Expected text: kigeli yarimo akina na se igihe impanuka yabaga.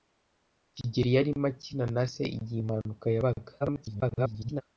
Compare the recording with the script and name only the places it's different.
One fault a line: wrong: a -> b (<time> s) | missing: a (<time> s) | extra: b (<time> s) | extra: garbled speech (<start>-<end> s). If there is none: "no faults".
extra: garbled speech (3.6-4.6 s)